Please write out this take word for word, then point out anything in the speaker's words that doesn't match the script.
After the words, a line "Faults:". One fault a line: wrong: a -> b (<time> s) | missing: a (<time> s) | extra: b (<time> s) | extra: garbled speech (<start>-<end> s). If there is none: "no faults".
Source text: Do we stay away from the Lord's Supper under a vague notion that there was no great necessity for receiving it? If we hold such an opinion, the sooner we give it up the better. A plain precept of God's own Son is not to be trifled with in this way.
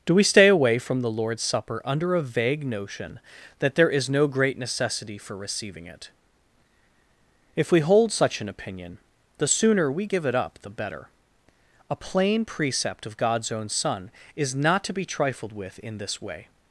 Do we stay away from the Lord's Supper under a vague notion that there is no great necessity for receiving it? If we hold such an opinion, the sooner we give it up the better. A plain precept of God's own Son is not to be trifled with in this way.
Faults:
wrong: was -> is (3.9 s)